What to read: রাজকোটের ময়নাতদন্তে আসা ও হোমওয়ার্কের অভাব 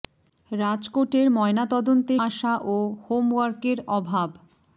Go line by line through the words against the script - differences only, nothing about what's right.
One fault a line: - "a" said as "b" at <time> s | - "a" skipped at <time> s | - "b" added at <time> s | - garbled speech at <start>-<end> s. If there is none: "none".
none